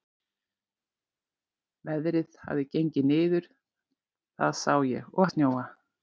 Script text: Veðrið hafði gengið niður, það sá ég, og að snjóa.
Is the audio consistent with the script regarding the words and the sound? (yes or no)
yes